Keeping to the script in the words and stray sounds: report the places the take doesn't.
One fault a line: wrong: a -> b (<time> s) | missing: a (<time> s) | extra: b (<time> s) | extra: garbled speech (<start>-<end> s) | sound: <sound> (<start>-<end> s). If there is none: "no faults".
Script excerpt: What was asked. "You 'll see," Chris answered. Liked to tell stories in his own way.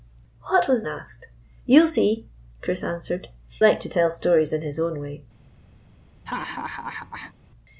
sound: laugh (6.3-7.3 s)